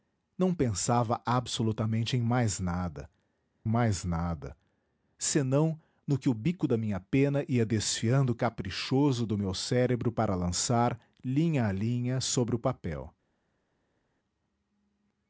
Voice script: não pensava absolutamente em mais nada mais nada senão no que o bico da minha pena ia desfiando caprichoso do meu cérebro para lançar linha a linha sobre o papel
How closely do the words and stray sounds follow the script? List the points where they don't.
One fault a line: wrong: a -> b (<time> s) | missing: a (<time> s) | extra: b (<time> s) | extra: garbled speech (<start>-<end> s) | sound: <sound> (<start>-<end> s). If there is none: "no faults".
no faults